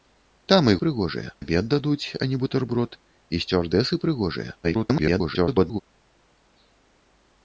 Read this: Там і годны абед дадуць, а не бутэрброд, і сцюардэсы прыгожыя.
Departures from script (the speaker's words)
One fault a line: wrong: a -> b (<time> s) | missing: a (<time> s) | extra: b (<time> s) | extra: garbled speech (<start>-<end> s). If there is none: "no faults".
wrong: годны -> прыгожыя (0.8 s)
extra: garbled speech (4.6-5.8 s)